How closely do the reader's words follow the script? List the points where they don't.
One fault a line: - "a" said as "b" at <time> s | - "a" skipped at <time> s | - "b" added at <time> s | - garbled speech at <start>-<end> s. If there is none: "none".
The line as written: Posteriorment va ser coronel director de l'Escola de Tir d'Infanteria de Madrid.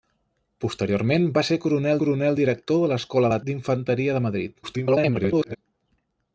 - "coronel" added at 2.0 s
- "Tir" skipped at 3.4 s
- garbled speech at 4.6-5.6 s